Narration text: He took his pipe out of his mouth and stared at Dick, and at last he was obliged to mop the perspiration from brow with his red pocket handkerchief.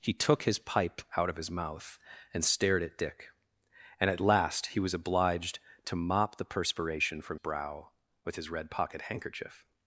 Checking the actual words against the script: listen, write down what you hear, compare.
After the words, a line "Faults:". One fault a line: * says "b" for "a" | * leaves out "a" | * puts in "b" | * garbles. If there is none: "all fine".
He took his pipe out of his mouth and stared at Dick, and at last he was obliged to mop the perspiration from brow with his red pocket handkerchief.
Faults:
all fine